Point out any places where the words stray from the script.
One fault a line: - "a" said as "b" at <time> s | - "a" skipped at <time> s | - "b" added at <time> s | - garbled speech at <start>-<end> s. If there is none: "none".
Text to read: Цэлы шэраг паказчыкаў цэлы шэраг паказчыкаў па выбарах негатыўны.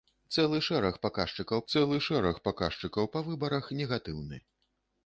none